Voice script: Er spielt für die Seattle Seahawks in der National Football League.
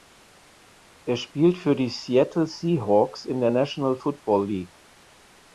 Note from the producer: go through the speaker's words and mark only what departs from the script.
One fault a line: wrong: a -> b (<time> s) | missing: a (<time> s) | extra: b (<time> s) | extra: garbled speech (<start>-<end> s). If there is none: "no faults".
no faults